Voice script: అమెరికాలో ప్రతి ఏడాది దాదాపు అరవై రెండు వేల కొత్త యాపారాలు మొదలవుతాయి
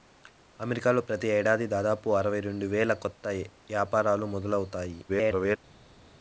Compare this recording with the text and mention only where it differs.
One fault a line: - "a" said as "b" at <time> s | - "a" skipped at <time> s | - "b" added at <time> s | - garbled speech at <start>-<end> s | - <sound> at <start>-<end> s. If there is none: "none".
- garbled speech at 5.1-5.6 s